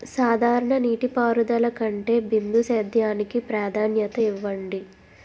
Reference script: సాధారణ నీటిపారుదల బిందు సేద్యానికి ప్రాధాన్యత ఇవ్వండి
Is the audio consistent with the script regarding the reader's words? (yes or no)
no